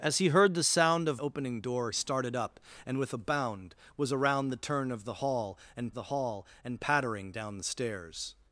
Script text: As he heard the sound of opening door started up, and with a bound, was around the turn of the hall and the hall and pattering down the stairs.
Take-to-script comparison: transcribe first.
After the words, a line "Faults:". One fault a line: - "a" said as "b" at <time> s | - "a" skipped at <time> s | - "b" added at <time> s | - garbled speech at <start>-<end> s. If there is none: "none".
As he heard the sound of opening door started up, and with a bound, was around the turn of the hall and the hall and pattering down the stairs.
Faults:
none